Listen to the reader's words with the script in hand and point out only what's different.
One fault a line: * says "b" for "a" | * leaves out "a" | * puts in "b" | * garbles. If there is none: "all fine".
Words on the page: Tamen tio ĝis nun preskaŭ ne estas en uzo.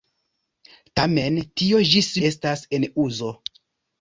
* leaves out "nun preskaŭ ne"